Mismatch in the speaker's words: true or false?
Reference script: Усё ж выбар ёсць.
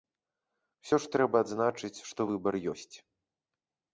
true